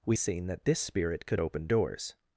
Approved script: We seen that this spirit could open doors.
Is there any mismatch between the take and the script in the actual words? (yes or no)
no